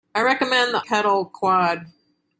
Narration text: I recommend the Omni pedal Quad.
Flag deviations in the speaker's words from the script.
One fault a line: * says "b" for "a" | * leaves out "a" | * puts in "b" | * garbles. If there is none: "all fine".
* leaves out "Omni"